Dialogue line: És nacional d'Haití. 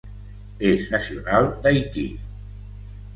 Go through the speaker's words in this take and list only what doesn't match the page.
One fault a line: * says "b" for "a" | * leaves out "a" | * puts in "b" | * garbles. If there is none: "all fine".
all fine